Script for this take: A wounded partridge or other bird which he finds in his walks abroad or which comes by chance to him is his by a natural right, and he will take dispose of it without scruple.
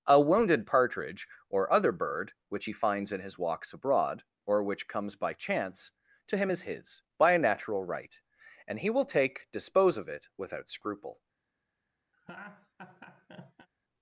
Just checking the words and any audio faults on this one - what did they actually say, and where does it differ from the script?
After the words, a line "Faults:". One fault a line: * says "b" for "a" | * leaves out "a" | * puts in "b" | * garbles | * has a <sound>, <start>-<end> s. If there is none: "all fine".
A wounded partridge or other bird which he finds in his walks abroad or which comes by chance to him is his by a natural right, and he will take dispose of it without scruple.
Faults:
* has a laugh, 12.1-13.7 s